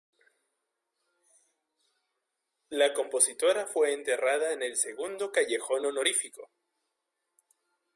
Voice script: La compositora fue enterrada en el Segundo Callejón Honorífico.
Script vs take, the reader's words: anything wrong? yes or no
no